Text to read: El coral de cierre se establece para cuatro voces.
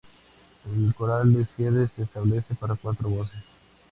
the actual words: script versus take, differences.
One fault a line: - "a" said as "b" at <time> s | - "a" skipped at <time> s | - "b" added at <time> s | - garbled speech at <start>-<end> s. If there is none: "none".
none